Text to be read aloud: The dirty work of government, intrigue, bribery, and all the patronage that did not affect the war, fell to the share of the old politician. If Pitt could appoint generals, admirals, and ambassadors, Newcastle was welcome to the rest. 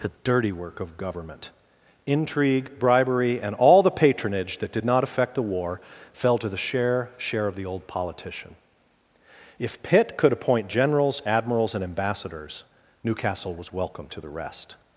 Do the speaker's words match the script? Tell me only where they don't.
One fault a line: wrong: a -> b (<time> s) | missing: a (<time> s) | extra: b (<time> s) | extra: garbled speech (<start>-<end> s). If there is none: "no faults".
extra: share (7.2 s)